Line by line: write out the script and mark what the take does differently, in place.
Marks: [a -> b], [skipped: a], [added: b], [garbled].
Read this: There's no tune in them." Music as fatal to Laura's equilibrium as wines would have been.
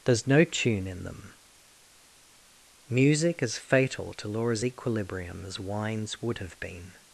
There's no tune in them." Music as fatal to Laura's equilibrium as wines would have been.